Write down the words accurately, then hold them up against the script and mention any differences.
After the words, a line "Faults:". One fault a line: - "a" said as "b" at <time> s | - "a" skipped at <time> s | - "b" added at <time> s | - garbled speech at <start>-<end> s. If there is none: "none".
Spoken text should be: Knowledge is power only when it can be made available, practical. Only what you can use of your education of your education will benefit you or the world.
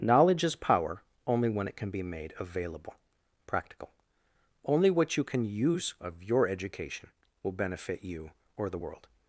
Knowledge is power only when it can be made available, practical. Only what you can use of your education will benefit you or the world.
Faults:
- "of your education" skipped at 7.1 s